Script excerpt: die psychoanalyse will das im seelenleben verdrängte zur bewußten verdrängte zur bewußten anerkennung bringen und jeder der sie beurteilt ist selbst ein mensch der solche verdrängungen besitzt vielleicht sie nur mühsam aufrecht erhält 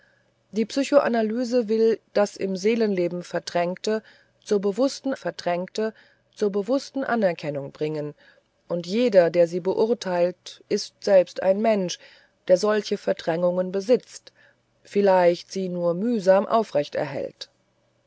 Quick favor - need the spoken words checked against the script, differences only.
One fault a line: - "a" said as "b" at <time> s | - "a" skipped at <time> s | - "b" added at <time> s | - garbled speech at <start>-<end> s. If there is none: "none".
none